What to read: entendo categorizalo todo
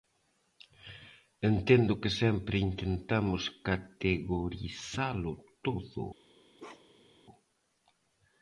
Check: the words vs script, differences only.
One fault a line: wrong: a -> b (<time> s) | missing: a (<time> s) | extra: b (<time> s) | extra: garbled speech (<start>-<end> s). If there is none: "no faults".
extra: que sempre intentamos (2.0 s)